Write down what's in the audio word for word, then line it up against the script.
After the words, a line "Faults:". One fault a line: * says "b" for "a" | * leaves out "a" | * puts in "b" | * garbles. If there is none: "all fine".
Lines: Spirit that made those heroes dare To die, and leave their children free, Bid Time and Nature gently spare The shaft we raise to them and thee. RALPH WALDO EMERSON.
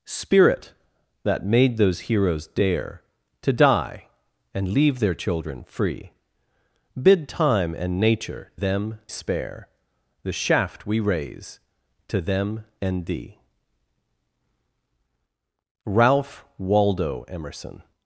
Spirit that made those heroes dare To die, and leave their children free, Bid Time and Nature them spare The shaft we raise to them and thee. RALPH WALDO EMERSON.
Faults:
* says "them" for "gently"